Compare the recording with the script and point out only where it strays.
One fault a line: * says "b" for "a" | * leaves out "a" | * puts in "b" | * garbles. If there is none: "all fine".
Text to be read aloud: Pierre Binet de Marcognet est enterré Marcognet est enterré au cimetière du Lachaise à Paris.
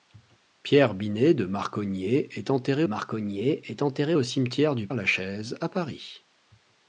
all fine